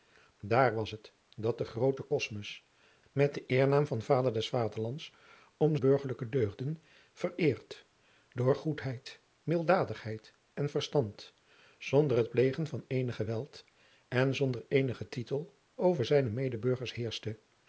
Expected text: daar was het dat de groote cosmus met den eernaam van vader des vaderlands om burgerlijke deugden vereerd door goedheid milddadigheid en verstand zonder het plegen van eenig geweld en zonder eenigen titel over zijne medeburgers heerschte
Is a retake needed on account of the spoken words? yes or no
no